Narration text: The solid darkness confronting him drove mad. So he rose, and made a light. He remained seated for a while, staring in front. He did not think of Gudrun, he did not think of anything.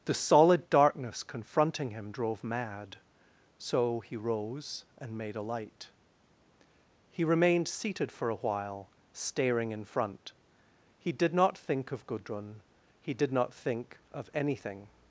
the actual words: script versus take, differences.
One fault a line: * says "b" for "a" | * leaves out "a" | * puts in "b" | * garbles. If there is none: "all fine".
all fine